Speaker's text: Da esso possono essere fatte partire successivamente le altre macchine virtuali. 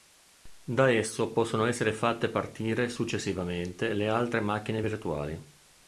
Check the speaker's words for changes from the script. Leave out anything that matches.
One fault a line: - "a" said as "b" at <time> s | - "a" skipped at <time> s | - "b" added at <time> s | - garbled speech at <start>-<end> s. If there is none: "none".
none